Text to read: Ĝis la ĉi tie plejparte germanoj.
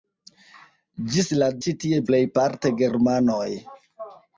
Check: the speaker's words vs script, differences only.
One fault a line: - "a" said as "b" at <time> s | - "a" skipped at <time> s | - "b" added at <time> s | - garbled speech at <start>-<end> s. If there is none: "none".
none